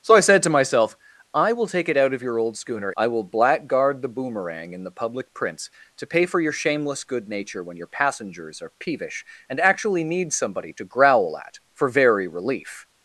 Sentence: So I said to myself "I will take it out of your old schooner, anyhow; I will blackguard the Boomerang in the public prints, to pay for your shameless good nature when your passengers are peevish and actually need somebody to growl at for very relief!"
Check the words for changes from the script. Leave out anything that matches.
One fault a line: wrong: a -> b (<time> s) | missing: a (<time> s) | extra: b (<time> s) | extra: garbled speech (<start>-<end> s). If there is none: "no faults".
missing: anyhow (2.9 s)